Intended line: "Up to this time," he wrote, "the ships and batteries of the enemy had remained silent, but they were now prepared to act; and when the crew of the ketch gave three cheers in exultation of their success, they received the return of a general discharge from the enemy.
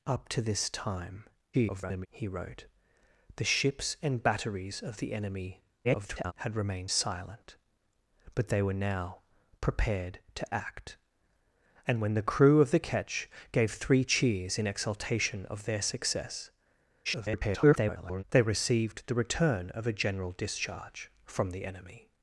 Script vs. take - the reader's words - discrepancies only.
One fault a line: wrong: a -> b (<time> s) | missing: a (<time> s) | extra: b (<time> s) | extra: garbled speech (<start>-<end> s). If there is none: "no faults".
extra: garbled speech (1.5-2.1 s)
extra: garbled speech (5.8-6.3 s)
extra: garbled speech (17.0-18.2 s)